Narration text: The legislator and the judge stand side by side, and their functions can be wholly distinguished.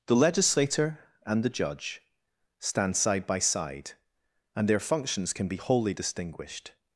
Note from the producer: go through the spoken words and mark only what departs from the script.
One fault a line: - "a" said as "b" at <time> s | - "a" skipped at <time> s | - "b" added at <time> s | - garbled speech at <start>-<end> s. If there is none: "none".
none